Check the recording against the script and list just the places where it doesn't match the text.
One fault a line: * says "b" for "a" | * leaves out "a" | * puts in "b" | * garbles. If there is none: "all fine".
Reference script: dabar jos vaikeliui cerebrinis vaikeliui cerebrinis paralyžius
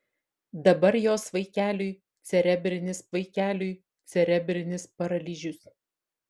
all fine